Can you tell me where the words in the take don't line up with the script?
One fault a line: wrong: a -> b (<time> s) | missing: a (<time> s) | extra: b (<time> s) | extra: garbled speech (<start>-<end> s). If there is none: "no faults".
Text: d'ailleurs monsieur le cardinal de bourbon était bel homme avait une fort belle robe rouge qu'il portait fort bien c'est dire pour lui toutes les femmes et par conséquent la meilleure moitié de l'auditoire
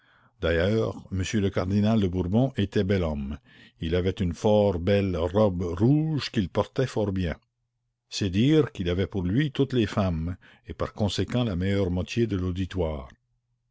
extra: il (3.8 s)
extra: qu'il avait (8.7 s)